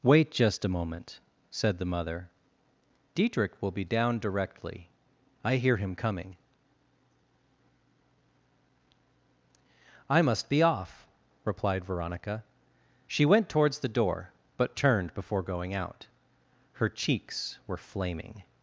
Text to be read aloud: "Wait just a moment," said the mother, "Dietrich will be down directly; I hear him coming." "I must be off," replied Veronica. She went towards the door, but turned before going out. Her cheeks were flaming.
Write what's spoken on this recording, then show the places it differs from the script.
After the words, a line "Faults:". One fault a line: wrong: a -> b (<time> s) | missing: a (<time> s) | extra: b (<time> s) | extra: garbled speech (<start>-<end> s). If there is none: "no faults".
"Wait just a moment," said the mother, "Dietrich will be down directly; I hear him coming." "I must be off," replied Veronica. She went towards the door, but turned before going out. Her cheeks were flaming.
Faults:
no faults